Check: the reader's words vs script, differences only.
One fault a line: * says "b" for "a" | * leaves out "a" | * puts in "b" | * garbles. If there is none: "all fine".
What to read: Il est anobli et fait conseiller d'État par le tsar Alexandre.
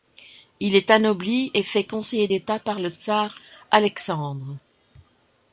all fine